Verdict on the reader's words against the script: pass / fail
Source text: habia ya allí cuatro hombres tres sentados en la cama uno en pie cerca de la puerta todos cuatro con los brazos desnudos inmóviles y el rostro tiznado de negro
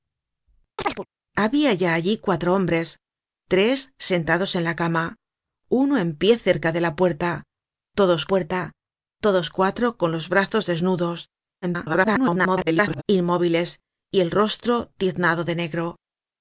fail